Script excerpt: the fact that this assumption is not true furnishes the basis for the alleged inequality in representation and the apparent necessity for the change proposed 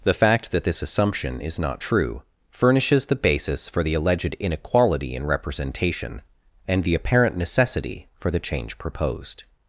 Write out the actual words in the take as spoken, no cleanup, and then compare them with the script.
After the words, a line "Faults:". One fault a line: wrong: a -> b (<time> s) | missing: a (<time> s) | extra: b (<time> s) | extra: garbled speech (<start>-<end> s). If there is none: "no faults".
the fact that this assumption is not true furnishes the basis for the alleged inequality in representation and the apparent necessity for the change proposed
Faults:
no faults